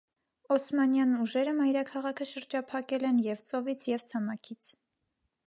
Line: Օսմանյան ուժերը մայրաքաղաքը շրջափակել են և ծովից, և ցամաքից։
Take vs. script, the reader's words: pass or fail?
pass